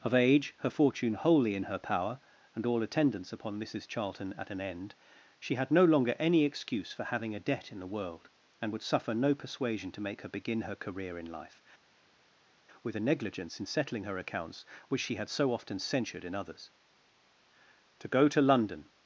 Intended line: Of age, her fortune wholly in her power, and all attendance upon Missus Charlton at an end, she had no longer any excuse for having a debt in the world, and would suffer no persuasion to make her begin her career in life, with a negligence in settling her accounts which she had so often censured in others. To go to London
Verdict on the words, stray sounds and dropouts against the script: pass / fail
pass